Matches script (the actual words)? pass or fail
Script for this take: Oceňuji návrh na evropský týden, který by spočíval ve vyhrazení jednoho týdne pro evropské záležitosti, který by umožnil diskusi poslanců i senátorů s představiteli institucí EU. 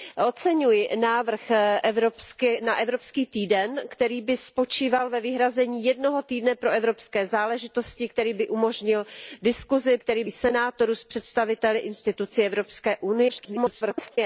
fail